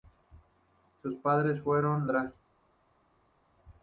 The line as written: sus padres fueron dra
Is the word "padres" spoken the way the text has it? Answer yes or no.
yes